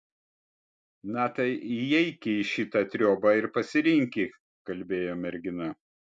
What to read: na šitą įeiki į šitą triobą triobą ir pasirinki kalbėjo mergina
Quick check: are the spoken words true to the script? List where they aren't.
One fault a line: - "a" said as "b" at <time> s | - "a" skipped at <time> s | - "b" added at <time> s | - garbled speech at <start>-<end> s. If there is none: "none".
- "šitą" said as "tai" at 1.4 s
- "triobą" skipped at 3.3 s